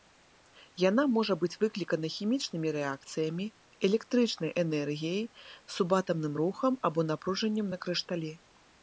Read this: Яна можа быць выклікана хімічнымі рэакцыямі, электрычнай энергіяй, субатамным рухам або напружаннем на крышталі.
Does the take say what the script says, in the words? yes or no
yes